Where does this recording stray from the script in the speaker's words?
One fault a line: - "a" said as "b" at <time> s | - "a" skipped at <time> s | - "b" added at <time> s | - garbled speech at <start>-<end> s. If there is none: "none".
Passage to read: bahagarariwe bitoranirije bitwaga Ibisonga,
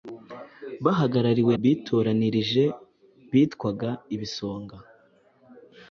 none